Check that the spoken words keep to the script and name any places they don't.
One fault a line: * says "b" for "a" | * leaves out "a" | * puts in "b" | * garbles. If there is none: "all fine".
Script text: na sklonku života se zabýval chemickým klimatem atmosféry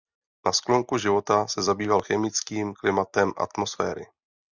all fine